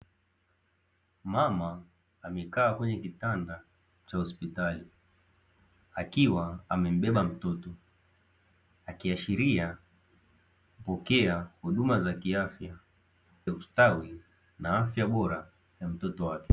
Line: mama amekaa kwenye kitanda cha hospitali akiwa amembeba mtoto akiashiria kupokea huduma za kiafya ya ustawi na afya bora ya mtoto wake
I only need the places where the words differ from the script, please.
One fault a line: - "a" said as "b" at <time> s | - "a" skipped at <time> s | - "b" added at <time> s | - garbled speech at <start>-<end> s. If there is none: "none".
none